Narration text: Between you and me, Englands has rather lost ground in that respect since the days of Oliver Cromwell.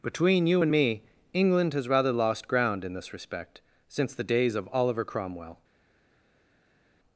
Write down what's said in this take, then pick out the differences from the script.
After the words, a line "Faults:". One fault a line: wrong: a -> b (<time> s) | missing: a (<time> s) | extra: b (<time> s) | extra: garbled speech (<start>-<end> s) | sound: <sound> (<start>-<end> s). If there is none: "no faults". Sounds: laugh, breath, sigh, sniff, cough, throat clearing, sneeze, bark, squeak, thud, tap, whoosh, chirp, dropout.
Between you and me, England has rather lost ground in this respect since the days of Oliver Cromwell.
Faults:
wrong: Englands -> England (1.3 s)
wrong: that -> this (2.9 s)